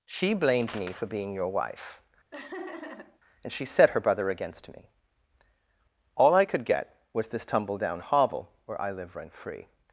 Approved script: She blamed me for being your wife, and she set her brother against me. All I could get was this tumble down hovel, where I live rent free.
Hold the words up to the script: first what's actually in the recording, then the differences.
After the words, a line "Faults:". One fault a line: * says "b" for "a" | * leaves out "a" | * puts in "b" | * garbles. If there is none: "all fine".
She blamed me for being your wife, and she set her brother against me. All I could get was this tumble down hovel, where I live rent free.
Faults:
all fine